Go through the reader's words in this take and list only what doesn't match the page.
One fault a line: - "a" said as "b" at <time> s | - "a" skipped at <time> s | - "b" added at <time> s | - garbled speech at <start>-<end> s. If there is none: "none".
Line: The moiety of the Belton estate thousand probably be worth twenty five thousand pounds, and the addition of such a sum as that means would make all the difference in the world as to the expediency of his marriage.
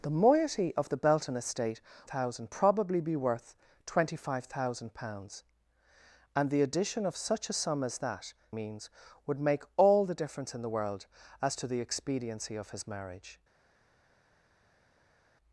none